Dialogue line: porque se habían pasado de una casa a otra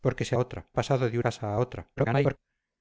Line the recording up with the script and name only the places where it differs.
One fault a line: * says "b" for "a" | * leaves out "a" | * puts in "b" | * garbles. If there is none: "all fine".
* says "otra" for "habían"
* leaves out "una"
* garbles